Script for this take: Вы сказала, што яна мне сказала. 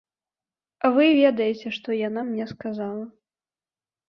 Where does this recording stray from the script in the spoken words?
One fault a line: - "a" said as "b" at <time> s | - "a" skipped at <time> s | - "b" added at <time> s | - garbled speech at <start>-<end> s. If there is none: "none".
- "сказала" said as "ведаеце" at 1.2 s